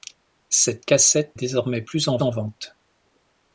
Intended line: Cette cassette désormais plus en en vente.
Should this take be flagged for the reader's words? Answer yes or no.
no